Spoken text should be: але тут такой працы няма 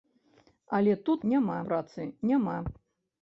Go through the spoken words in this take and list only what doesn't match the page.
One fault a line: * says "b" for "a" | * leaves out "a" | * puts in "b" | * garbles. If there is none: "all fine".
* says "няма" for "такой"